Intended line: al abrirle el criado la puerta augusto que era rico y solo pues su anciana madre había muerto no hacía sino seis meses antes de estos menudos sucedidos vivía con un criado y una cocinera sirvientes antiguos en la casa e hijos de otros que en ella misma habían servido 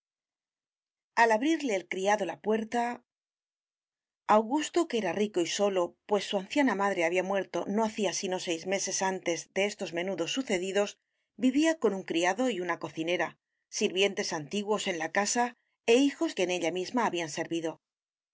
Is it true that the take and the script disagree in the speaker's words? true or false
true